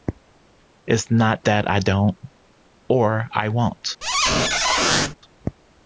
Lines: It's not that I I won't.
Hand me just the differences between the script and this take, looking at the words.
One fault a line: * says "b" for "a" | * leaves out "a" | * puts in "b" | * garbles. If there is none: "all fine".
* puts in "don't or"